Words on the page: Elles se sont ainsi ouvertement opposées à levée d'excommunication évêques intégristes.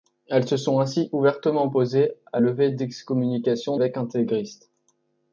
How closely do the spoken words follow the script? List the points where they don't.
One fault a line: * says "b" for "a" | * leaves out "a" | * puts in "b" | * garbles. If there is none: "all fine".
all fine